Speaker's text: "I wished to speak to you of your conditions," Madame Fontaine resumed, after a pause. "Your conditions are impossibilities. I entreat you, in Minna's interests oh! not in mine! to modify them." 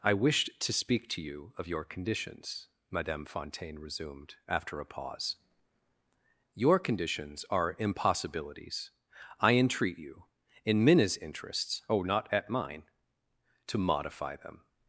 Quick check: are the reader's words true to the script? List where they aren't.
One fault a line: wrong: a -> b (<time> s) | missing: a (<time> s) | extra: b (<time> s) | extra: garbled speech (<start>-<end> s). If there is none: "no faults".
wrong: in -> at (12.3 s)